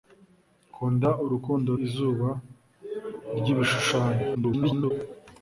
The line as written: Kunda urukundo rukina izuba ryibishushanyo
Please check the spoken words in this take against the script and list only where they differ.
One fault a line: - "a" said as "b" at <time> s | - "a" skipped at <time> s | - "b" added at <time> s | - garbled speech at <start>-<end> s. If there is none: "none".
- "rukina" skipped at 1.7 s
- garbled speech at 4.3-4.9 s